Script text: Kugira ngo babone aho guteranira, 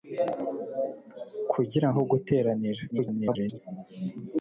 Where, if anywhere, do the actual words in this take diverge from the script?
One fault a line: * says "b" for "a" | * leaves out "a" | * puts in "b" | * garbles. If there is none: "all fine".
* leaves out "ngo babone"
* garbles